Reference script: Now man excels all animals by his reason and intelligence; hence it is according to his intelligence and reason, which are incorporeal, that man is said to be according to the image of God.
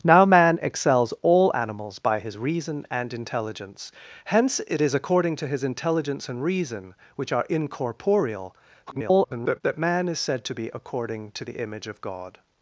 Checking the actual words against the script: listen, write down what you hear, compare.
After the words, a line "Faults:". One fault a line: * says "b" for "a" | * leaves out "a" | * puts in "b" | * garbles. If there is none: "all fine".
Now man excels all animals by his reason and intelligence; hence it is according to his intelligence and reason, which are incorporeal, [garbled] that man is said to be according to the image of God.
Faults:
* garbles